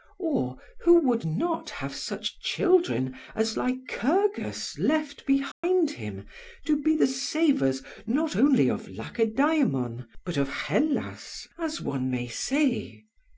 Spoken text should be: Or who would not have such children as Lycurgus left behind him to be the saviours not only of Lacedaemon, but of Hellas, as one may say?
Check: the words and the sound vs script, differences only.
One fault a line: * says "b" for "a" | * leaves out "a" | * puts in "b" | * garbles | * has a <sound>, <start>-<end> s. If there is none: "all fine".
* has a dropout, 5.5-5.6 s